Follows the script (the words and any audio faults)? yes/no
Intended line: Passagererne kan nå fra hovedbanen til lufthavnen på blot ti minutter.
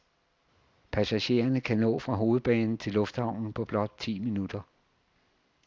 yes